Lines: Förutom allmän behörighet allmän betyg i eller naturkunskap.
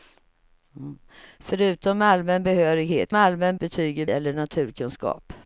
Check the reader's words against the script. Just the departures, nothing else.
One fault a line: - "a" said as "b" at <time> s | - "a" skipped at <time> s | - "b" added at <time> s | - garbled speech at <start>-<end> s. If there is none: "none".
none